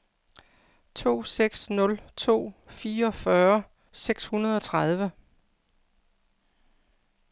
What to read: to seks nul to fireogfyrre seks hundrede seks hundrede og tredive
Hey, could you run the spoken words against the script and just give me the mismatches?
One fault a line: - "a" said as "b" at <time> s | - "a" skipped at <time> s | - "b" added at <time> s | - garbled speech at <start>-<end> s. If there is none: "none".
- "seks hundrede" skipped at 4.6 s